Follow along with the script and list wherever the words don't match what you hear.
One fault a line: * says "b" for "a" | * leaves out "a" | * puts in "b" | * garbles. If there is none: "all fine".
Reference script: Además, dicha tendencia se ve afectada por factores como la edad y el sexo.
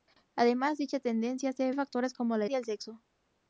* leaves out "ve afectada por"
* leaves out "edad"